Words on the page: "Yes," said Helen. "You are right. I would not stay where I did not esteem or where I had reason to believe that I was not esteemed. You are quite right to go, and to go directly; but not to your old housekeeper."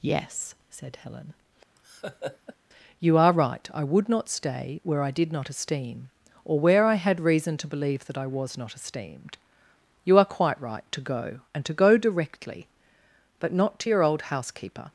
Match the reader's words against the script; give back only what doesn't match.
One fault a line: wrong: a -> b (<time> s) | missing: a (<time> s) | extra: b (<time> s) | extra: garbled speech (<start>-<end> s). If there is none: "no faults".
no faults